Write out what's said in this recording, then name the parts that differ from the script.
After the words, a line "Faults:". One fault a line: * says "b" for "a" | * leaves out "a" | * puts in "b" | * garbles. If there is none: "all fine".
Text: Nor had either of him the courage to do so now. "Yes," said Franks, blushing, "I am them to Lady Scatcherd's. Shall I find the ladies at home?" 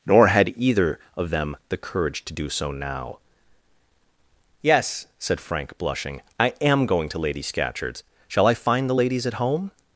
Nor had either of them the courage to do so now. "Yes," said Frank, blushing, "I am going to Lady Scatcherd's. Shall I find the ladies at home?"
Faults:
* says "them" for "him"
* says "Frank" for "Franks"
* says "going" for "them"